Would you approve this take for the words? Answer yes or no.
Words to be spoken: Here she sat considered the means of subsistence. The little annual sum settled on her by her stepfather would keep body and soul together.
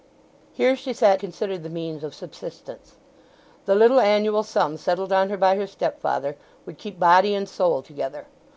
yes